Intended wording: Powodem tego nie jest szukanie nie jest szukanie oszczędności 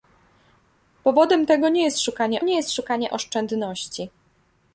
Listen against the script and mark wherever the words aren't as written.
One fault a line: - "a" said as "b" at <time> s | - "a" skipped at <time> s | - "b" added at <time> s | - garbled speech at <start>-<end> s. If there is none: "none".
none